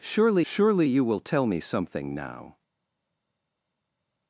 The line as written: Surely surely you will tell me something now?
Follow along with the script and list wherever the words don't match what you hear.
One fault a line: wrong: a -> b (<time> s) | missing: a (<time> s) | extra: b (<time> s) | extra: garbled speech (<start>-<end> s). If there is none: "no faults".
no faults